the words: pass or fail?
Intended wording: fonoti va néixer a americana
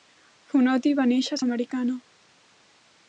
pass